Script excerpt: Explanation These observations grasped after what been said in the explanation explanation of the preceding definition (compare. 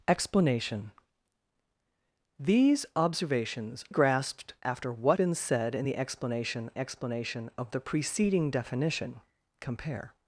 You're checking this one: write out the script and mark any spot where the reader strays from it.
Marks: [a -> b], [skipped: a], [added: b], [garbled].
Explanation These observations grasped after what been said in the explanation explanation of the preceding definition (compare.